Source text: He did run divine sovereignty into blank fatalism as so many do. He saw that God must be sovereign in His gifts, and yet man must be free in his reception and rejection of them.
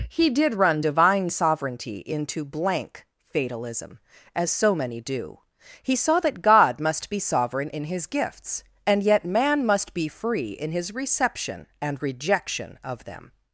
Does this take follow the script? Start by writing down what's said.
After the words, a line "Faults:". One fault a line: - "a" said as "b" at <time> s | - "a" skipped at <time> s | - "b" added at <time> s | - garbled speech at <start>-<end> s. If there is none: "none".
He did run divine sovereignty into blank fatalism as so many do. He saw that God must be sovereign in His gifts, and yet man must be free in his reception and rejection of them.
Faults:
none